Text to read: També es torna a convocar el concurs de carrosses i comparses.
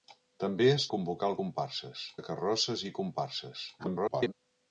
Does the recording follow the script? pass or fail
fail